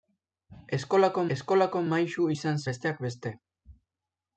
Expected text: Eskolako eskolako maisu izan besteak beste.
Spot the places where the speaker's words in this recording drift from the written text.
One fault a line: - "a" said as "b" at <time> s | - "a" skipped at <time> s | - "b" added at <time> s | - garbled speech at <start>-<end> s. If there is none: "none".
none